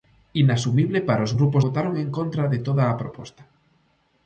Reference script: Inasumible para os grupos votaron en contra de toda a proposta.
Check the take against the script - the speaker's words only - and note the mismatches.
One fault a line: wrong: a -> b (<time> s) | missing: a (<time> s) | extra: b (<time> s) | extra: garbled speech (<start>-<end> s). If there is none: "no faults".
no faults